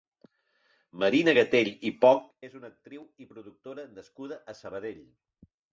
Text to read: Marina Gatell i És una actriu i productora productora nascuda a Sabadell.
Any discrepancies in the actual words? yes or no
yes